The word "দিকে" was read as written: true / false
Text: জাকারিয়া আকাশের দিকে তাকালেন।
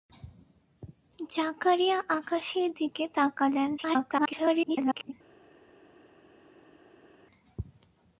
true